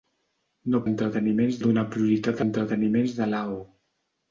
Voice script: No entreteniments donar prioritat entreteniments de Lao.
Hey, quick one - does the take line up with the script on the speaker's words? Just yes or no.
yes